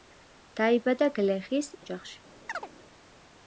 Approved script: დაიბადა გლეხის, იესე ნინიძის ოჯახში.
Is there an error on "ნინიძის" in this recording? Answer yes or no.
yes